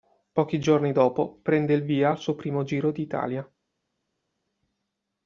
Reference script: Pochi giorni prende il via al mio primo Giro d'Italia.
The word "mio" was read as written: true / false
false